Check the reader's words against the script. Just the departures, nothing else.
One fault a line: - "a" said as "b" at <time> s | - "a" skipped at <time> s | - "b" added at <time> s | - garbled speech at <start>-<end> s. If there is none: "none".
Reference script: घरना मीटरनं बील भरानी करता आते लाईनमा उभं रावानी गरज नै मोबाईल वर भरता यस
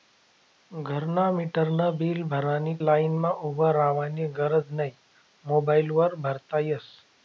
- "करता आते" skipped at 2.8 s